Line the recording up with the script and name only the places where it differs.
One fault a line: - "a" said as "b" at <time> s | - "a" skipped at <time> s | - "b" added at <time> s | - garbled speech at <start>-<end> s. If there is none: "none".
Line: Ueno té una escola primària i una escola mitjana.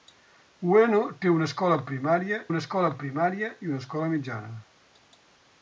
- "una escola primària" added at 2.5 s